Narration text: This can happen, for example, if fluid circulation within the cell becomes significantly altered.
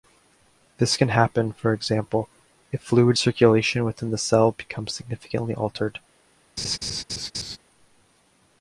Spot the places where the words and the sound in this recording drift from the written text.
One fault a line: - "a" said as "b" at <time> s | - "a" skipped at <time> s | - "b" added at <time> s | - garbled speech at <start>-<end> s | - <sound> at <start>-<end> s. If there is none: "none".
- laugh at 6.6-7.6 s